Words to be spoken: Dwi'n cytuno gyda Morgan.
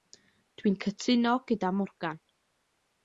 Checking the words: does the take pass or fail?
pass